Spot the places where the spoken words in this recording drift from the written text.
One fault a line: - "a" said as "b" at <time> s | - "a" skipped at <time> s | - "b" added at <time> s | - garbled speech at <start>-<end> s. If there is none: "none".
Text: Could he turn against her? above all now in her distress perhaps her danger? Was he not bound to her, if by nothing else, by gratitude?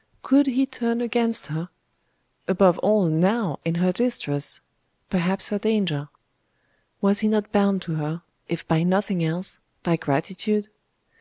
none